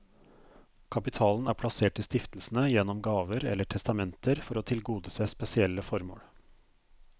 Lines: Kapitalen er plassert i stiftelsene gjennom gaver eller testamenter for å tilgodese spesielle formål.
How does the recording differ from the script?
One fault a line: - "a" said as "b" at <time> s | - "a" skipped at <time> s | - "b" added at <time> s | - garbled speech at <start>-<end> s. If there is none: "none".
none